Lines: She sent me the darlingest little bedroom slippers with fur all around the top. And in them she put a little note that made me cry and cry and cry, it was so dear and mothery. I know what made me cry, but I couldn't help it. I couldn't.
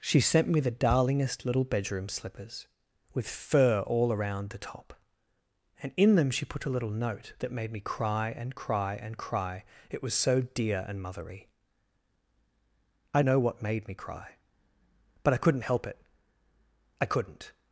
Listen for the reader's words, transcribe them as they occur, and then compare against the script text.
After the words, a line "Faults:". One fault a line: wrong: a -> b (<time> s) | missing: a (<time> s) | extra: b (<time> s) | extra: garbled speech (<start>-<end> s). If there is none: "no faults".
She sent me the darlingest little bedroom slippers with fur all around the top. And in them she put a little note that made me cry and cry and cry, it was so dear and mothery. I know what made me cry, but I couldn't help it. I couldn't.
Faults:
no faults